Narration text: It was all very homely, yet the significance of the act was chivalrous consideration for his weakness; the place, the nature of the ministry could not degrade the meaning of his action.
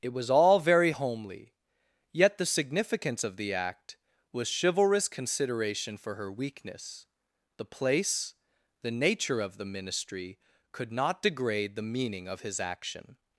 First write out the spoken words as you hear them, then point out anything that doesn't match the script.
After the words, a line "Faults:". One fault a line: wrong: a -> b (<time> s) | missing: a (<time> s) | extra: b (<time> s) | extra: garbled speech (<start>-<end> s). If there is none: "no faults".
It was all very homely, yet the significance of the act was chivalrous consideration for her weakness; the place, the nature of the ministry could not degrade the meaning of his action.
Faults:
wrong: his -> her (6.2 s)